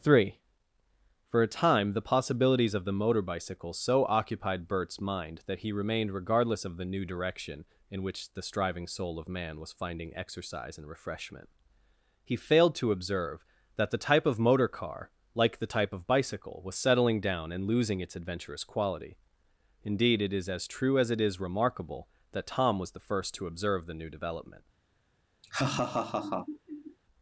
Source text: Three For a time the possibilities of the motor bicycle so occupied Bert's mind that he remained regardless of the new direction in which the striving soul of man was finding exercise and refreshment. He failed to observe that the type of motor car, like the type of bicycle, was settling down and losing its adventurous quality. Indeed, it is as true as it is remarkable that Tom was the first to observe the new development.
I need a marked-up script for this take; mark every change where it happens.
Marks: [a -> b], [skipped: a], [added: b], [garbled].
Three For a time the possibilities of the motor bicycle so occupied Bert's mind that he remained regardless of the new direction in which the striving soul of man was finding exercise and refreshment. He failed to observe that the type of motor car, like the type of bicycle, was settling down and losing its adventurous quality. Indeed, it is as true as it is remarkable that Tom was the first to observe the new development.